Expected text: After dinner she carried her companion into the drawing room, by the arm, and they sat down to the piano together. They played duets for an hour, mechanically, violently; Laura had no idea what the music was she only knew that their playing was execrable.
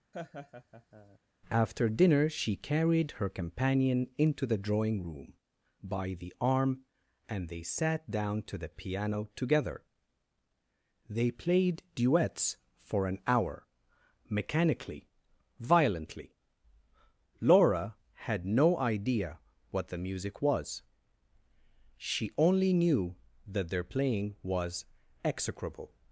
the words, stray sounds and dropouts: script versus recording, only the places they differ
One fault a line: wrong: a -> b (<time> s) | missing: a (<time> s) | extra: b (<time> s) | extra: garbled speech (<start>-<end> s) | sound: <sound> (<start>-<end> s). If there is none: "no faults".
sound: laugh (0.1-1.2 s)